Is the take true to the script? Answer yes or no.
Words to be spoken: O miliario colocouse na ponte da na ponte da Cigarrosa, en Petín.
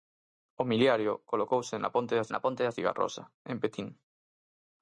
yes